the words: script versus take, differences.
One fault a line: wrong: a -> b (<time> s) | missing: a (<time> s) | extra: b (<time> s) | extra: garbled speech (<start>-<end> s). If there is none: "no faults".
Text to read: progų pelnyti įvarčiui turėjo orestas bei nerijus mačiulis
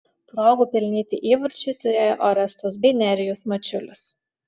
no faults